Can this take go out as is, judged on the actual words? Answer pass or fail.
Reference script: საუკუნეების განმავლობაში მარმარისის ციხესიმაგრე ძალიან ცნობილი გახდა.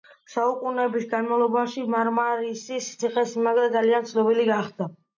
pass